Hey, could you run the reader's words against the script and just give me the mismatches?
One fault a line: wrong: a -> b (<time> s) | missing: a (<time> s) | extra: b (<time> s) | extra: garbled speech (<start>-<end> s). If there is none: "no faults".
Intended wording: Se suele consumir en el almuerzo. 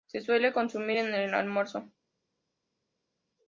no faults